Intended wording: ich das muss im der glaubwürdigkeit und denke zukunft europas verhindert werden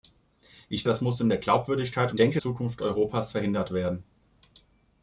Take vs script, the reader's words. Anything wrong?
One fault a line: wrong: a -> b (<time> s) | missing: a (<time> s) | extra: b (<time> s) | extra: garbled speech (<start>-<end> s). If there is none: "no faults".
no faults